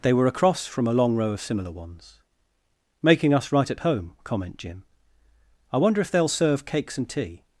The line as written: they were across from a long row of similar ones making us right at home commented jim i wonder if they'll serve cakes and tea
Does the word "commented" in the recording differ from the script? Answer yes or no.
yes